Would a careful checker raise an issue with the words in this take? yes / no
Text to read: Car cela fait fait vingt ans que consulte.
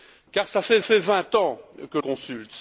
no